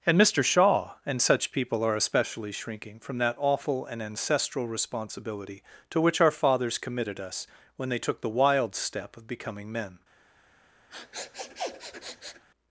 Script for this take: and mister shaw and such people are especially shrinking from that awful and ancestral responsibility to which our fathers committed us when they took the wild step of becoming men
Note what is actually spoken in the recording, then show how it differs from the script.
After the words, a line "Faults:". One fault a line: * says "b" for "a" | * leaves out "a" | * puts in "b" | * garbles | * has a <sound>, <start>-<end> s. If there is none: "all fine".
and mister shaw and such people are especially shrinking from that awful and ancestral responsibility to which our fathers committed us when they took the wild step of becoming men
Faults:
* has a sniff, 10.9-12.4 s